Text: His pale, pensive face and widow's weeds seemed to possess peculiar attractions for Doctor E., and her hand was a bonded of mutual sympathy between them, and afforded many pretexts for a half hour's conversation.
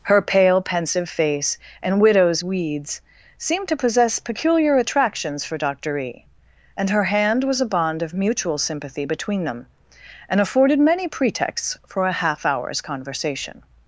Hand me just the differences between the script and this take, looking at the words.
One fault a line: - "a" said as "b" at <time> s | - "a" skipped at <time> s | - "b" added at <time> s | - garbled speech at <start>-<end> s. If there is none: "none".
- "His" said as "Her" at 0.0 s
- "bonded" said as "bond" at 7.6 s